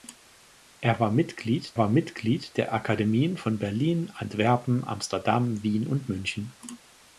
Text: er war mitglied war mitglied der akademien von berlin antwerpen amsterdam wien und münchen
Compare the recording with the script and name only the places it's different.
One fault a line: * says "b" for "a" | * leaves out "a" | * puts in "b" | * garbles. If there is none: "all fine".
all fine